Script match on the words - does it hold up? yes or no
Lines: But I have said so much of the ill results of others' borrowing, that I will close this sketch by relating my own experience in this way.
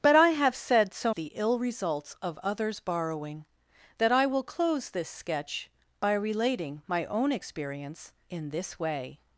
no